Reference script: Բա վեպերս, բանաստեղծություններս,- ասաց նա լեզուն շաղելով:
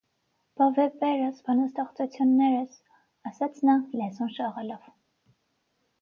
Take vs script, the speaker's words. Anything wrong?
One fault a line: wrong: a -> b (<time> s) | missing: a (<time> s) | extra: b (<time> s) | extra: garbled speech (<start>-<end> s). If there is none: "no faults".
no faults